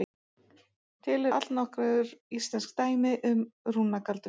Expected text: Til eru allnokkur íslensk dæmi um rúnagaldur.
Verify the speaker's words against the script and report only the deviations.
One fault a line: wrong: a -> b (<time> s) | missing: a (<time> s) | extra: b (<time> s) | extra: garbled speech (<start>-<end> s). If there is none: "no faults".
missing: eru (1.3 s)